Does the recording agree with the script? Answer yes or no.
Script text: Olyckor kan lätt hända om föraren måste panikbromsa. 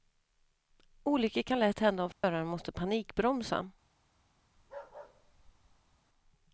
yes